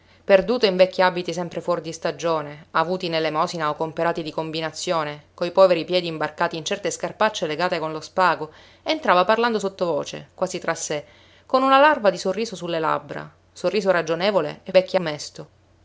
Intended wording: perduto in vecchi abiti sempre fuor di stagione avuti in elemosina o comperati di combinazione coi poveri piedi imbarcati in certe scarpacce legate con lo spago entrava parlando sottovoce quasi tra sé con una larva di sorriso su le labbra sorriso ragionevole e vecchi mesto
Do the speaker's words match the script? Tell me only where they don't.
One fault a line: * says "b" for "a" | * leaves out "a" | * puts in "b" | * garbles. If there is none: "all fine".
all fine